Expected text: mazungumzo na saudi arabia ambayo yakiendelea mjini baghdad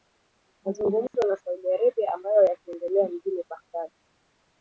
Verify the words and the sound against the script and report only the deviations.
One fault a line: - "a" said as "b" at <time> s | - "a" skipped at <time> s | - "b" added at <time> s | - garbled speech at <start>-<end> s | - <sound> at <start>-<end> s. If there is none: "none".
- dropout at 1.1-1.1 s